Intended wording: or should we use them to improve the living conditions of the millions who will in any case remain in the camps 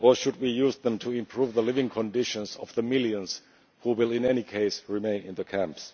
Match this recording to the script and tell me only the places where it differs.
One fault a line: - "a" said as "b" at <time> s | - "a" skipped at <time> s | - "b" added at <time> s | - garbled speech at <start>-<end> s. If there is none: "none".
none